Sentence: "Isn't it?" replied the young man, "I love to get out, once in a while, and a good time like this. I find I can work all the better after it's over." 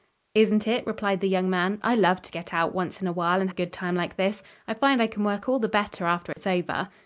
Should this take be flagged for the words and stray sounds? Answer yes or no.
yes